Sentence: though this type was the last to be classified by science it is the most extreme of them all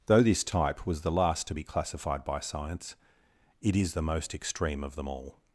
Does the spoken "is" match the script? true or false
true